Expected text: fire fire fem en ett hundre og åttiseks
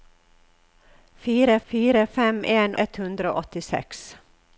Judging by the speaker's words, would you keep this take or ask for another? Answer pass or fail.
pass